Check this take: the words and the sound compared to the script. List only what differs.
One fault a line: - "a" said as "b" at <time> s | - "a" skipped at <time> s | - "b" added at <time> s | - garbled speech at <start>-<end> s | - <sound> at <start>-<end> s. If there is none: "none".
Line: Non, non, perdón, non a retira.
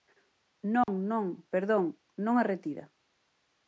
- dropout at 0.8-0.9 s